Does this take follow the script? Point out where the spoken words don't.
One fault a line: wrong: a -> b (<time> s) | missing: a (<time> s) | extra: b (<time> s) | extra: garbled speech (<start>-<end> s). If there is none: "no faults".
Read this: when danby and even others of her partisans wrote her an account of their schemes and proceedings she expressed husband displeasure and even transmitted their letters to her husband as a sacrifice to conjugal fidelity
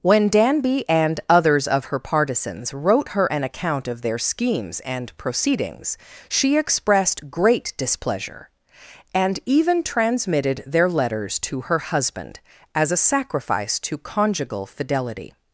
missing: even (1.2 s)
wrong: husband -> great (7.3 s)